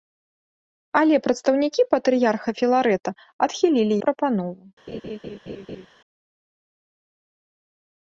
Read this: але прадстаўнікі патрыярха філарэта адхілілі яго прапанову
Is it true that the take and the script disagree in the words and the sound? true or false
true